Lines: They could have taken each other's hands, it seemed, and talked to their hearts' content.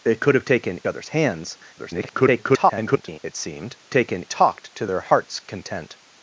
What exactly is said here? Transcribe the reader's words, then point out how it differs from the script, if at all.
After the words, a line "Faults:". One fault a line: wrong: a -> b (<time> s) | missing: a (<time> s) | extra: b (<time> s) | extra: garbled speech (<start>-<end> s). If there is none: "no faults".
They could have taken other's hands, [garbled] it seemed, taken talked to their hearts' content.
Faults:
missing: each (0.8 s)
extra: garbled speech (1.8-3.2 s)
wrong: and -> taken (3.9 s)